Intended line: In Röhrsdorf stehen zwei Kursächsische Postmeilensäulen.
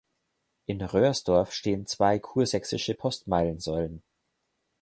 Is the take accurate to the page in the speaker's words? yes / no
yes